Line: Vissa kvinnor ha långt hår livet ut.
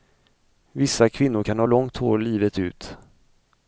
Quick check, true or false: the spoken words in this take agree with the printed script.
false